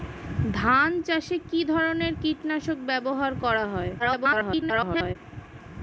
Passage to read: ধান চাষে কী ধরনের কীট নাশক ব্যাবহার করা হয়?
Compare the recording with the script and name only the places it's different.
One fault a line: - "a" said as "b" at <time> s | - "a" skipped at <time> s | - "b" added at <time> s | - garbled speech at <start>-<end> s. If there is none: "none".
- garbled speech at 4.0-5.2 s